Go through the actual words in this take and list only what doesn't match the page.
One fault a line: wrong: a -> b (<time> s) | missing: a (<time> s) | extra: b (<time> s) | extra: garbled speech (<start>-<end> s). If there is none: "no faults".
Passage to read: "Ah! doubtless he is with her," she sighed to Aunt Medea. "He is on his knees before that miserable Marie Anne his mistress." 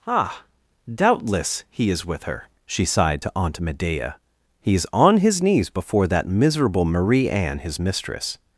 no faults